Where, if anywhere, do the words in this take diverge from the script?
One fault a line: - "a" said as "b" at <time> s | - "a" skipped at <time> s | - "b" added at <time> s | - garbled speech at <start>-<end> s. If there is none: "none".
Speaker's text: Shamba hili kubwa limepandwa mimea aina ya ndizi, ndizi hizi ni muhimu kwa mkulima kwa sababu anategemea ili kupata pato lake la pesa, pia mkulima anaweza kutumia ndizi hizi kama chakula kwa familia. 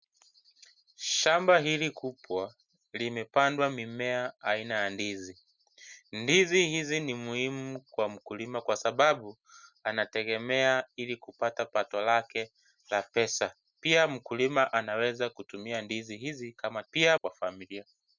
- "chakula" said as "pia" at 16.9 s